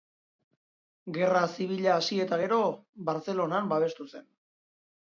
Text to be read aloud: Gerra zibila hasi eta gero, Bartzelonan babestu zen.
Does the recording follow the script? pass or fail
pass